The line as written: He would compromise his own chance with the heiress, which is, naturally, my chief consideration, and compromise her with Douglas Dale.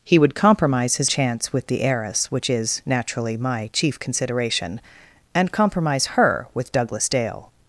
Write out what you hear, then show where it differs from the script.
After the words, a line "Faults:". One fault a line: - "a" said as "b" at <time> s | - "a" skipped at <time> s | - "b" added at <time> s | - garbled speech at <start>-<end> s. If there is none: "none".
He would compromise his chance with the heiress, which is, naturally, my chief consideration, and compromise her with Douglas Dale.
Faults:
- "own" skipped at 1.1 s